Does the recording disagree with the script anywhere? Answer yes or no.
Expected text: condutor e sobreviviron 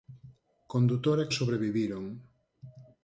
no